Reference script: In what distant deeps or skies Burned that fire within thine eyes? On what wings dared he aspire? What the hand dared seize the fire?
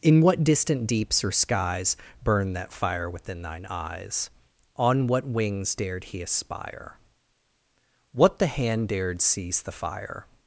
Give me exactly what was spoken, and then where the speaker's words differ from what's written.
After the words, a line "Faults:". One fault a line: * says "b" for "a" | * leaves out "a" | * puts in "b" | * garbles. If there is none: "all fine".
In what distant deeps or skies Burned that fire within thine eyes? On what wings dared he aspire? What the hand dared seize the fire?
Faults:
all fine